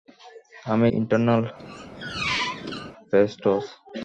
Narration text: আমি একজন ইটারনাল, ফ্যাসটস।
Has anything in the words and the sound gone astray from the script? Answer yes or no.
yes